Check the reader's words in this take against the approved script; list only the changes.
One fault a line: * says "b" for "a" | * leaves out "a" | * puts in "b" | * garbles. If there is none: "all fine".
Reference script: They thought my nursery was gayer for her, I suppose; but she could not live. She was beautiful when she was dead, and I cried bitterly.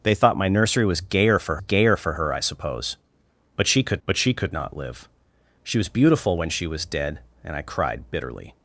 * puts in "gayer for"
* puts in "but she could"